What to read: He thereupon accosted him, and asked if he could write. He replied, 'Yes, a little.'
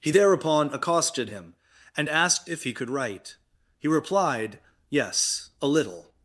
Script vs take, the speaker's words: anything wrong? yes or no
no